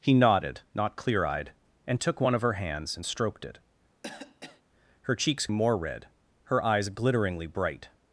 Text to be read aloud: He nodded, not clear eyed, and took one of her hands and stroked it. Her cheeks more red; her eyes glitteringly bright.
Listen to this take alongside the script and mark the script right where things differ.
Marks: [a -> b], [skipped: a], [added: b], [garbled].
He nodded, not clear eyed, and took one of her hands and stroked it. Her cheeks more red; her eyes glitteringly bright.